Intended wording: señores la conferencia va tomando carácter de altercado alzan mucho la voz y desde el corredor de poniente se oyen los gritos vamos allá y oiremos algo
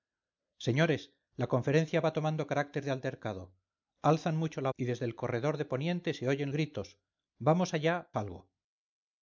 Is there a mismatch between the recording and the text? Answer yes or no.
yes